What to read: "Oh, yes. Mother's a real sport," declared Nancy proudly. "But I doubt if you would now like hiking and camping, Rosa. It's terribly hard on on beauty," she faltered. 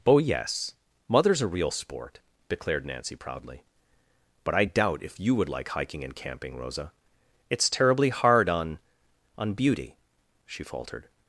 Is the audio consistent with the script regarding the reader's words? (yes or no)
no